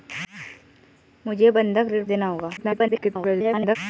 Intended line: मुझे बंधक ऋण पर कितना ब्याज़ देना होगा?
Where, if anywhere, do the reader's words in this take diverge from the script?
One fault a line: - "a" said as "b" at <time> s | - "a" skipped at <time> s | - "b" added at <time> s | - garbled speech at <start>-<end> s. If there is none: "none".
- "पर कितना ब्याज़" skipped at 2.0 s
- garbled speech at 2.6-3.8 s